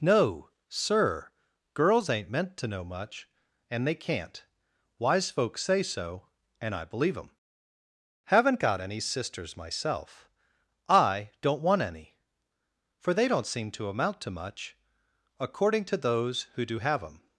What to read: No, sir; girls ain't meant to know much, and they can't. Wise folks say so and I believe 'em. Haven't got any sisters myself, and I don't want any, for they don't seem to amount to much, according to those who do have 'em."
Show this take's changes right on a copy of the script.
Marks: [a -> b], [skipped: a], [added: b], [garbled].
No, sir; girls ain't meant to know much, and they can't. Wise folks say so and I believe 'em. Haven't got any sisters myself, [skipped: and] I don't want any, for they don't seem to amount to much, according to those who do have 'em."